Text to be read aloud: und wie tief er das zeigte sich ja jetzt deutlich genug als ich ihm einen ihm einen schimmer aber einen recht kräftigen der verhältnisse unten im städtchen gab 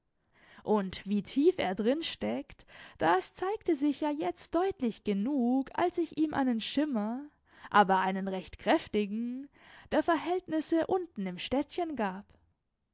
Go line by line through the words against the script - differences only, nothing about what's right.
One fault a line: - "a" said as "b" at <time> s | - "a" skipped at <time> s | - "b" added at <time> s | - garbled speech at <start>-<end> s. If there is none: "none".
- "drin steckt" added at 1.8 s
- "ihm einen" skipped at 6.6 s